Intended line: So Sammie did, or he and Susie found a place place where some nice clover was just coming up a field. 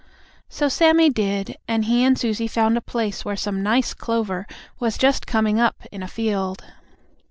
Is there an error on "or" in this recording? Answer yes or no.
yes